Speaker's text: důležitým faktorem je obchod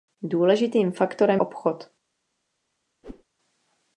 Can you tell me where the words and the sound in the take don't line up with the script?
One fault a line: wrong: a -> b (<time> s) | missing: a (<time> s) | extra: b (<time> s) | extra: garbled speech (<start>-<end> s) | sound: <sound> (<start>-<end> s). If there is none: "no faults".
missing: je (1.4 s)
sound: whoosh (3.0-3.2 s)